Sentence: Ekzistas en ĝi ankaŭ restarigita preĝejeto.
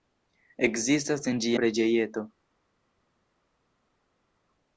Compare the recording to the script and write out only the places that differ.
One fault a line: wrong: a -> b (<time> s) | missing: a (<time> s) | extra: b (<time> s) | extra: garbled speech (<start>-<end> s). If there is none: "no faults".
missing: ankaŭ restarigita (1.5 s)